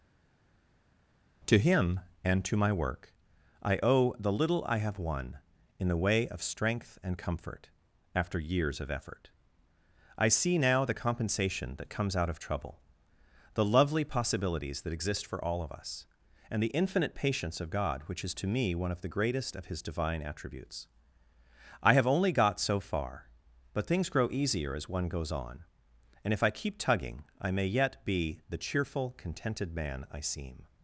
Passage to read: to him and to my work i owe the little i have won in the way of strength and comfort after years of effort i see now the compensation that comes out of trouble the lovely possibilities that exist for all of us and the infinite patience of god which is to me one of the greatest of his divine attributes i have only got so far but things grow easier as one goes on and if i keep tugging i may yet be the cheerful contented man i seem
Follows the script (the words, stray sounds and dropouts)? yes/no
yes